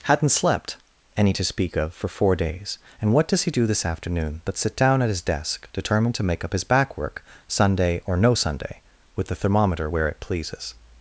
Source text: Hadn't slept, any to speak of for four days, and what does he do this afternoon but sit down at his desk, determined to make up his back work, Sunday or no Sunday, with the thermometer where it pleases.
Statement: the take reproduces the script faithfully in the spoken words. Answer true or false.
true